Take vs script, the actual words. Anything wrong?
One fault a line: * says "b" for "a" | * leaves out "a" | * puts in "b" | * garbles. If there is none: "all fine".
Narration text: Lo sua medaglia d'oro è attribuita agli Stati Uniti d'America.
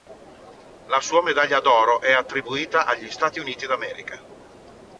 * says "La" for "Lo"